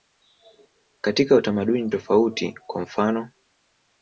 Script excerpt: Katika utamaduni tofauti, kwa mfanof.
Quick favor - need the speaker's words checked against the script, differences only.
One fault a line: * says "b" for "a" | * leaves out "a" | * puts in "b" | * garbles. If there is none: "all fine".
all fine